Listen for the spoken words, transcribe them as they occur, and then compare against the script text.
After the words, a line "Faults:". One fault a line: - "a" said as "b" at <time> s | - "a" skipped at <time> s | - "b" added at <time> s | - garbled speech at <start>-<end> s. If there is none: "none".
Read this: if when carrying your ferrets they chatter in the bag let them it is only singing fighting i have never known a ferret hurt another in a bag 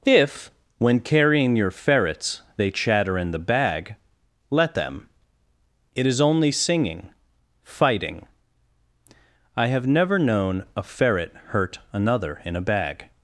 if when carrying your ferrets they chatter in the bag let them it is only singing fighting i have never known a ferret hurt another in a bag
Faults:
none